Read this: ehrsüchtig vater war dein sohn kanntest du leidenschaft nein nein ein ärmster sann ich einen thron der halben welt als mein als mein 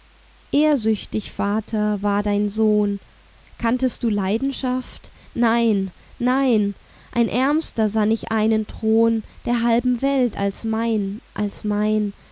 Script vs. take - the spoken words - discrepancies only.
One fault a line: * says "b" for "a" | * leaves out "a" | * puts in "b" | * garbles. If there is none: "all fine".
all fine